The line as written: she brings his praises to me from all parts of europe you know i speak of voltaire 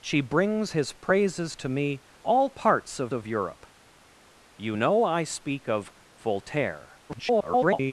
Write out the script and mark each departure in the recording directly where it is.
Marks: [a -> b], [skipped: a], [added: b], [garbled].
she brings his praises to me [skipped: from] all parts of [added: of] europe you know i speak of voltaire [garbled]